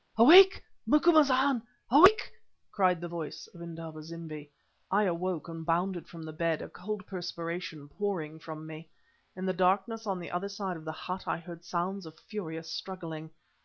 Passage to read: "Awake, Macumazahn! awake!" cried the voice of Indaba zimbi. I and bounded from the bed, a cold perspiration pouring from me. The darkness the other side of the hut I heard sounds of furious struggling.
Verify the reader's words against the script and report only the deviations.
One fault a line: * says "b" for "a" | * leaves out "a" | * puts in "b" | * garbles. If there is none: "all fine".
* puts in "awoke"
* puts in "In"
* puts in "on"